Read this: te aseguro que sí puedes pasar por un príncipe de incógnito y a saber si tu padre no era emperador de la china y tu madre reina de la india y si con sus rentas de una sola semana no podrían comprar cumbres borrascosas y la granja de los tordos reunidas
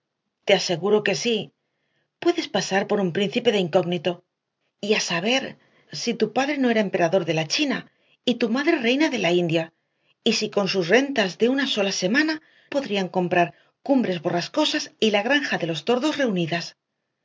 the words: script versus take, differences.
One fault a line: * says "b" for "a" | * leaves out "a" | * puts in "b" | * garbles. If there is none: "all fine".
* leaves out "no"